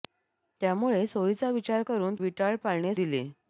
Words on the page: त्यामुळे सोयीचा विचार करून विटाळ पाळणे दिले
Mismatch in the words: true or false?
false